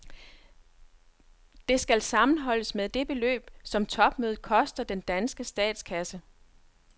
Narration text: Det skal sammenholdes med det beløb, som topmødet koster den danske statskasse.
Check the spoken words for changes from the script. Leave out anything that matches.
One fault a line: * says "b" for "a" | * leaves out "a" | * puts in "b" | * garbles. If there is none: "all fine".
all fine